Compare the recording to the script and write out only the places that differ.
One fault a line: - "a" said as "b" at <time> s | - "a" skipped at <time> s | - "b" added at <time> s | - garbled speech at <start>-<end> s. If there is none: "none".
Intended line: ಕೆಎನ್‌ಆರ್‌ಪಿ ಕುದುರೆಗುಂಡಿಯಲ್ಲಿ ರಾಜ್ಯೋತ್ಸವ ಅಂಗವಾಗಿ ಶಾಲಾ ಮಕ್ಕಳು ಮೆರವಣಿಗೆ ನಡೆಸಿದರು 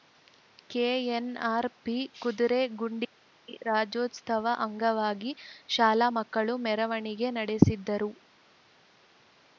none